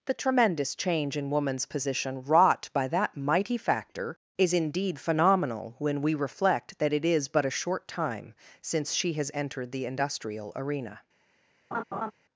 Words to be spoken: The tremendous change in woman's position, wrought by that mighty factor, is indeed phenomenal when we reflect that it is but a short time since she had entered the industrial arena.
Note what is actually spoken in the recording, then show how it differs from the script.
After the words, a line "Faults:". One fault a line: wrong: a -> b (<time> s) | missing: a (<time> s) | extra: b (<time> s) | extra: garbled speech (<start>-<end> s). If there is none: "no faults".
The tremendous change in woman's position, wrought by that mighty factor, is indeed phenomenal when we reflect that it is but a short time since she has entered the industrial arena.
Faults:
wrong: had -> has (9.1 s)